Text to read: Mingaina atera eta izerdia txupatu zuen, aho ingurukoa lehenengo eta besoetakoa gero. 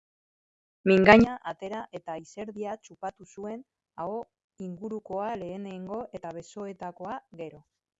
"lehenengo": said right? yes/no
yes